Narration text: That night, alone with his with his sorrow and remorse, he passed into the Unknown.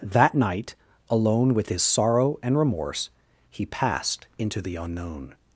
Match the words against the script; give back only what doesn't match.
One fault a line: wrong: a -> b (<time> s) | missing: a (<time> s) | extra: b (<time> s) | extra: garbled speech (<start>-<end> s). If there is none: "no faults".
missing: with his (1.8 s)